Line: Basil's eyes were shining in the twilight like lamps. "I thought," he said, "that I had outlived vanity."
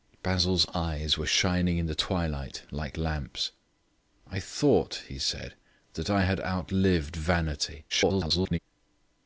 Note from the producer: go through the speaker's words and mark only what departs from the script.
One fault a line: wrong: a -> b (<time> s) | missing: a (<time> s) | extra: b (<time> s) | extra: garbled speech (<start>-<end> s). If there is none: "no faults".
extra: garbled speech (7.9-8.6 s)